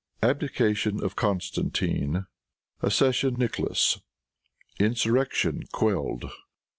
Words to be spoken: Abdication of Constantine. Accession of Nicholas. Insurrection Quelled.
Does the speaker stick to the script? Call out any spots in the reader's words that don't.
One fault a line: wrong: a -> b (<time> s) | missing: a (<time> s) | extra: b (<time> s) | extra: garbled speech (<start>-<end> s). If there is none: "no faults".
missing: of (3.4 s)